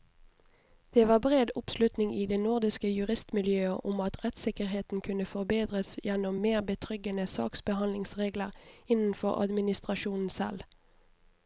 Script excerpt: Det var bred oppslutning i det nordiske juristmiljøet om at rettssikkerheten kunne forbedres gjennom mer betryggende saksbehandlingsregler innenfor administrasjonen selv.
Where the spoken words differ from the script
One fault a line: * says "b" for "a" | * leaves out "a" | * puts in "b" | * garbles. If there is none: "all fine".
all fine